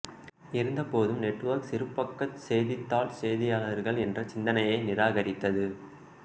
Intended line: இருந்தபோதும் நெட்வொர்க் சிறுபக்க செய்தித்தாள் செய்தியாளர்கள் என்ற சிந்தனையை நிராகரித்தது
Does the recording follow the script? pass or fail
pass